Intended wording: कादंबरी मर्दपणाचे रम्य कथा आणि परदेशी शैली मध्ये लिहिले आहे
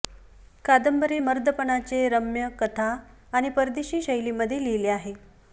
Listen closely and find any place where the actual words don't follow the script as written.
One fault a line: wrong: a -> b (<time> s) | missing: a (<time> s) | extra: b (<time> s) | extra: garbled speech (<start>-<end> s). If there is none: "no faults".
no faults